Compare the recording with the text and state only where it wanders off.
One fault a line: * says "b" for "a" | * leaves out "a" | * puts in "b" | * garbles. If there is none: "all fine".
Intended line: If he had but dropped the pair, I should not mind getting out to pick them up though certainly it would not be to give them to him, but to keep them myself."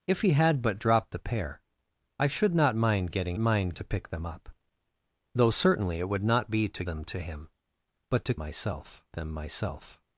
* says "mind" for "out"
* leaves out "give"
* says "myself" for "keep"